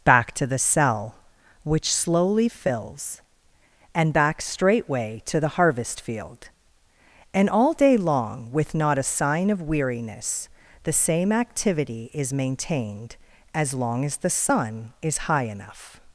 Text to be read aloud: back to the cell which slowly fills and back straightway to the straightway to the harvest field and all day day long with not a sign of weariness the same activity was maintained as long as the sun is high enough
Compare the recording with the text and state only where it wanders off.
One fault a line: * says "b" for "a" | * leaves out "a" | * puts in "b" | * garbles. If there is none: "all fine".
* leaves out "straightway to the"
* leaves out "day"
* says "is" for "was"